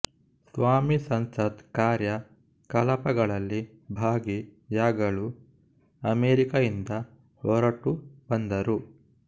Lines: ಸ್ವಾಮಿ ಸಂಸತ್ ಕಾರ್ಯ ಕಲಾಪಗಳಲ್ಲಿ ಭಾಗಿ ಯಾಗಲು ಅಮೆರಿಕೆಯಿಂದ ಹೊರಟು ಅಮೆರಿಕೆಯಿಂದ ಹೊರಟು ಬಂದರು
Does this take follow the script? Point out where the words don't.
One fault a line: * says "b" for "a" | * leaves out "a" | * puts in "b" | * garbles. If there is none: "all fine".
* leaves out "ಅಮೆರಿಕೆಯಿಂದ ಹೊರಟು"